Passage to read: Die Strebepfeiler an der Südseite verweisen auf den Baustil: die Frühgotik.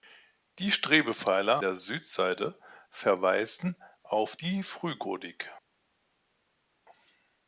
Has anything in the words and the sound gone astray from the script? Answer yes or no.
yes